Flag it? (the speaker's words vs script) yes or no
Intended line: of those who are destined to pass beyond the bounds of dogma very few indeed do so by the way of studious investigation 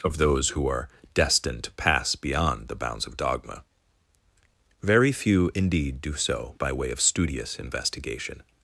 yes